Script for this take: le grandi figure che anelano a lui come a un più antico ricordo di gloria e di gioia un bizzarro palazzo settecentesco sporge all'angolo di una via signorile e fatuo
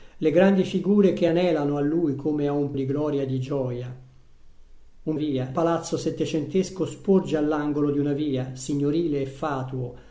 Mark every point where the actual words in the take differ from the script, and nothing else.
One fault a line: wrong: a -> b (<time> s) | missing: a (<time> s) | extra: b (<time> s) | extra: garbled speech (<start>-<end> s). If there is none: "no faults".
missing: più antico ricordo (2.7 s)
wrong: bizzarro -> via (5.1 s)